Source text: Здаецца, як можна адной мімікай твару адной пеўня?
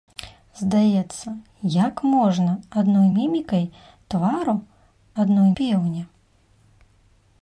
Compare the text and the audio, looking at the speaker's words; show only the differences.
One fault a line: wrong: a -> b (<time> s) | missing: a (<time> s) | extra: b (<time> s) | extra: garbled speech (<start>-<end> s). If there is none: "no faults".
no faults